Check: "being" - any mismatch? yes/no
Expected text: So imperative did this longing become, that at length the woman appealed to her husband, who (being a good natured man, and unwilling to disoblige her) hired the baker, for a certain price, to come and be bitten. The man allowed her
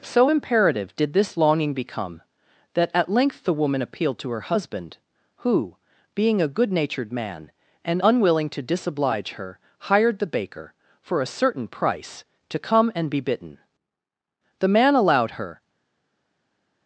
no